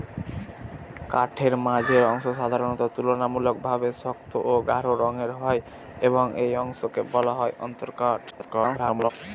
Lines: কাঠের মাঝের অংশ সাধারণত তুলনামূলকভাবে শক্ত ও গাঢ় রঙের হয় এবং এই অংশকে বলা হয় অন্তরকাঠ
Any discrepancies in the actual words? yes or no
yes